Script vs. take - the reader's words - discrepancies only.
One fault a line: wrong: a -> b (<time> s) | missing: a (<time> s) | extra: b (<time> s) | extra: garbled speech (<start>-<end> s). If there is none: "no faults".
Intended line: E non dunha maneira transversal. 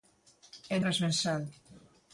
missing: non dunha maneira (0.8 s)